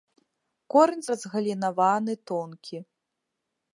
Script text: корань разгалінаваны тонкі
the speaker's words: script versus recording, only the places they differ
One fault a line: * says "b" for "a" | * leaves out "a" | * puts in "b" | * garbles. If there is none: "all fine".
all fine